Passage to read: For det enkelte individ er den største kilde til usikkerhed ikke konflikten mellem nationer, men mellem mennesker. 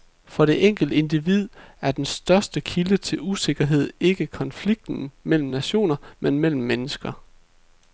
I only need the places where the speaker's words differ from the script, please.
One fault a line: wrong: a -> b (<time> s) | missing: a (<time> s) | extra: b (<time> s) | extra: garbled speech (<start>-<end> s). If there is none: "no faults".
no faults